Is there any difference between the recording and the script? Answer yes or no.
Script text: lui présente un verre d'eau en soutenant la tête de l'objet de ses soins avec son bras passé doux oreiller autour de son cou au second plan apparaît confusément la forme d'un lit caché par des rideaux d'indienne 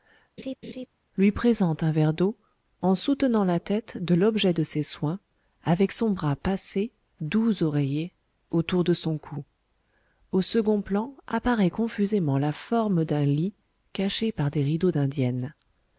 no